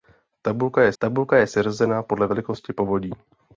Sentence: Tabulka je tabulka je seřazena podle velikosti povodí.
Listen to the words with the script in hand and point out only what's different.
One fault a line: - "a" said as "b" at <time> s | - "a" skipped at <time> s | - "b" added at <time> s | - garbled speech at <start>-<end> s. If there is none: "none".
none